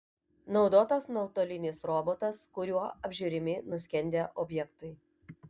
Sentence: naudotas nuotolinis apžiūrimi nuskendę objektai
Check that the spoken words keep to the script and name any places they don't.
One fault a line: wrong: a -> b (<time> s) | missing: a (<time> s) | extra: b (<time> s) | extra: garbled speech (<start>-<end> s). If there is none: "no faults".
extra: robotas kuriuo (1.9 s)